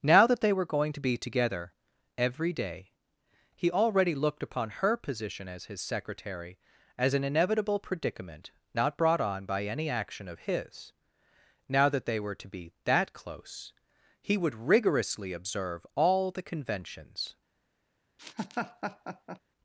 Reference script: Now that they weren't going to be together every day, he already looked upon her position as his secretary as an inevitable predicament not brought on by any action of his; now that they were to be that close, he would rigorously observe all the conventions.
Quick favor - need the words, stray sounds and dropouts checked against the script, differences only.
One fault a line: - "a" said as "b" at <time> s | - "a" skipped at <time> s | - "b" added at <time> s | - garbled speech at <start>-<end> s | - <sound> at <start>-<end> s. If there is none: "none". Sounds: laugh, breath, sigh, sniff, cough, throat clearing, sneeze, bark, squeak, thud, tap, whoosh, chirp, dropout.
- "weren't" said as "were" at 0.5 s
- laugh at 18.2-19.4 s